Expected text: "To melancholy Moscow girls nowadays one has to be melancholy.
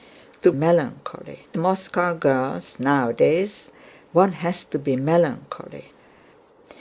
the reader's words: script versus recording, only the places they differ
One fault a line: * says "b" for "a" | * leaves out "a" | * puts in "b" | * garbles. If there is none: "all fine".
all fine